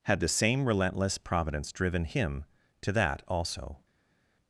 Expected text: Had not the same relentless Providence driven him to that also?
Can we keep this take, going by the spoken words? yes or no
no